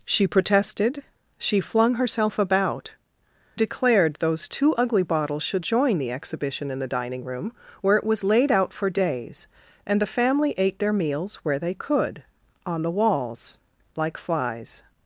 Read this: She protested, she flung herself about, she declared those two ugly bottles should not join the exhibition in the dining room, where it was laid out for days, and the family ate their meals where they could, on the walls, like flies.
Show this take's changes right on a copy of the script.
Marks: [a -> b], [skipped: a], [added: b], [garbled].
She protested, she flung herself about, [skipped: she] declared those two ugly bottles should [skipped: not] join the exhibition in the dining room, where it was laid out for days, and the family ate their meals where they could, on the walls, like flies.